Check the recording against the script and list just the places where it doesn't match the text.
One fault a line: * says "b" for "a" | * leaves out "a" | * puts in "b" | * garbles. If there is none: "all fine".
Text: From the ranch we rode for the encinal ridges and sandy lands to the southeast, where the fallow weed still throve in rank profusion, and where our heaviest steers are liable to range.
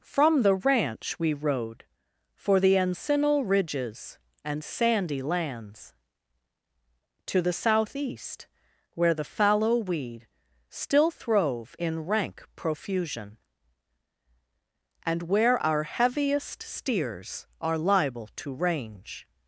all fine